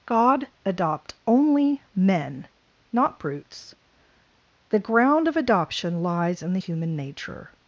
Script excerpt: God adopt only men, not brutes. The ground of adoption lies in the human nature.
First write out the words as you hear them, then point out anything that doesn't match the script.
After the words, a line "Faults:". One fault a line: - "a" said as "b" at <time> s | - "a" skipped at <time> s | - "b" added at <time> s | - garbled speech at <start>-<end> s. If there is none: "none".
God adopt only men, not brutes. The ground of adoption lies in the human nature.
Faults:
none